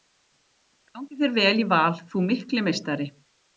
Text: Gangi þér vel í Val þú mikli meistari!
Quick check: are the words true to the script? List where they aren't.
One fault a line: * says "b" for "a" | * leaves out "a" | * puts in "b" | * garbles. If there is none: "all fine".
all fine